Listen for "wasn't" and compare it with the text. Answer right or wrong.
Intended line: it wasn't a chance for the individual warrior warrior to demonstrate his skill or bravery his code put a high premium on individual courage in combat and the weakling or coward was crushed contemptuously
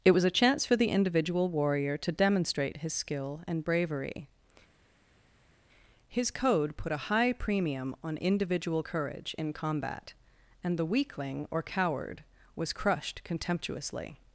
wrong